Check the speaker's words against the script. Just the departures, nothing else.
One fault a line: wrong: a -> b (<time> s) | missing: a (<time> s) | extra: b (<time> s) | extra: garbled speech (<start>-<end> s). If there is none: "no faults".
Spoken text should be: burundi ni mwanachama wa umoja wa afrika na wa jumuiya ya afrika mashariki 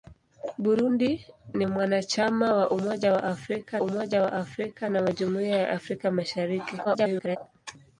extra: umoja wa afrika (3.8 s)
extra: garbled speech (6.8-7.4 s)